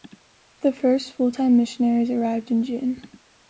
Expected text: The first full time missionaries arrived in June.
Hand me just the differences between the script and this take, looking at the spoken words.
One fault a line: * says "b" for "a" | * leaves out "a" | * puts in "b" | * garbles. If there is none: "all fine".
all fine